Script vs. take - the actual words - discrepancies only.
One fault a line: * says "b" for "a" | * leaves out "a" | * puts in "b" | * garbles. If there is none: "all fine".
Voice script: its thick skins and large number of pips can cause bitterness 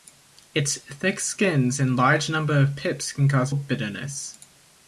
all fine